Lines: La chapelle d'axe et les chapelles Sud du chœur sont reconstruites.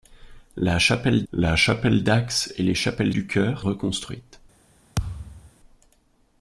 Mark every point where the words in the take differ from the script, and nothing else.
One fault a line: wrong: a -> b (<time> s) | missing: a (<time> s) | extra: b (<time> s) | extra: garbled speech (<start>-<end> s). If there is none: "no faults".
extra: la chapelle (1.3 s)
missing: Sud (3.1 s)
missing: sont (3.6 s)